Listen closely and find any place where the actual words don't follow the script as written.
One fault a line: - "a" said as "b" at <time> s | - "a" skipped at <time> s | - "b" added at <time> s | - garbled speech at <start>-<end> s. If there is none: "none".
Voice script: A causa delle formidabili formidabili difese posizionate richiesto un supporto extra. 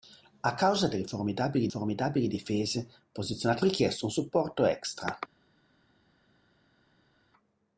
none